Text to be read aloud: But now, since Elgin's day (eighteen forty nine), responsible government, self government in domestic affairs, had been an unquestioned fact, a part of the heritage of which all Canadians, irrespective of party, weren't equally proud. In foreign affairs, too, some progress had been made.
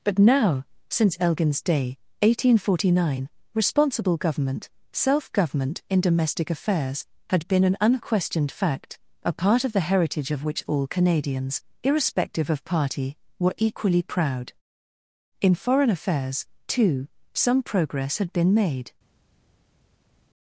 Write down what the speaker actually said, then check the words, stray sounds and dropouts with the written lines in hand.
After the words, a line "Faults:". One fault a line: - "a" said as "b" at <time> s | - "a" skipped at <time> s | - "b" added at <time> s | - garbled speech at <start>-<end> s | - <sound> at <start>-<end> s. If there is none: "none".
But now, since Elgin's day (eighteen forty nine), responsible government, self government in domestic affairs, had been an unquestioned fact, a part of the heritage of which all Canadians, irrespective of party, were equally proud. In foreign affairs, too, some progress had been made.
Faults:
- "weren't" said as "were" at 13.4 s